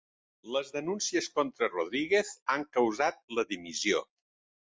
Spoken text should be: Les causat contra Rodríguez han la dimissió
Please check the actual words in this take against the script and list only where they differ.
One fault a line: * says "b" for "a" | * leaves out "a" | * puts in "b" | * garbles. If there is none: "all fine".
* says "denúncies" for "causat"
* puts in "causat"